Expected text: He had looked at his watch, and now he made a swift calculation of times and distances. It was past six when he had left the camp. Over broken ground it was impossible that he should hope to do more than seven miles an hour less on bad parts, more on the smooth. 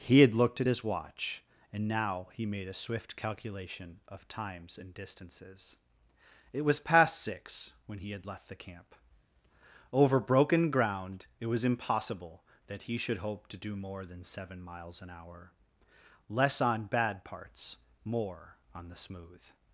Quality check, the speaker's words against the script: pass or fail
pass